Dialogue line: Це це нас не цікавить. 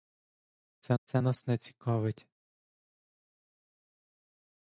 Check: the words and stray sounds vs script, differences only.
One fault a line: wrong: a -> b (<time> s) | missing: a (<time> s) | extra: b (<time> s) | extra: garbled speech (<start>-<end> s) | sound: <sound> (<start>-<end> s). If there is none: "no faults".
no faults